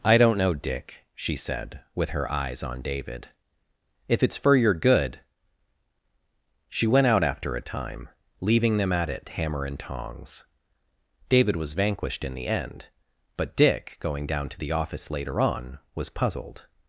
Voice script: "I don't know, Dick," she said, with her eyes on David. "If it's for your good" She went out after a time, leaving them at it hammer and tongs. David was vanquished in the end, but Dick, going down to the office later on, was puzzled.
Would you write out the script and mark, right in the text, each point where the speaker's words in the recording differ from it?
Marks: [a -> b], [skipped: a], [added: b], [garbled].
"I don't know, Dick," she said, with her eyes on David. "If it's for your good" She went out after a time, leaving them at it hammer and tongs. David was vanquished in the end, but Dick, going down to the office later on, was puzzled.